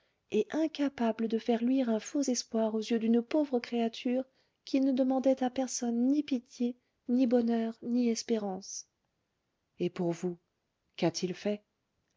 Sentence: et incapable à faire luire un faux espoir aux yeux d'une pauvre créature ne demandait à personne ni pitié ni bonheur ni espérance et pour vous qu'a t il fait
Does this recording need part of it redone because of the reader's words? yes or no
yes